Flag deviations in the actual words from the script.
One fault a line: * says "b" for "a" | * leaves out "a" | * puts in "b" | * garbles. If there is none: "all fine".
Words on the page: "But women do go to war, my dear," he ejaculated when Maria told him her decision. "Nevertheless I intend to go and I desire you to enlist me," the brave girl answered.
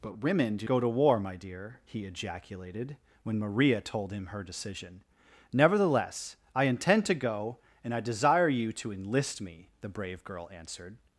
all fine